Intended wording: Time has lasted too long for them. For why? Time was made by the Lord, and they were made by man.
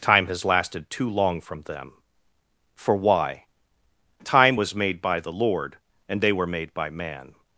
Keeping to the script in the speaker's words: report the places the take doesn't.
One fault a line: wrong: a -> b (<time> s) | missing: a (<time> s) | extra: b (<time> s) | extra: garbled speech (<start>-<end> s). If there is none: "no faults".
wrong: for -> from (1.4 s)